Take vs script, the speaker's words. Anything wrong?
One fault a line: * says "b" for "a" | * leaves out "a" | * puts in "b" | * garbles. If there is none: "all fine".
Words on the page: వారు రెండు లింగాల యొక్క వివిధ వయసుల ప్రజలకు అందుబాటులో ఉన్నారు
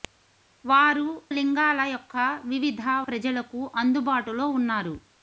* leaves out "రెండు"
* leaves out "వయసుల"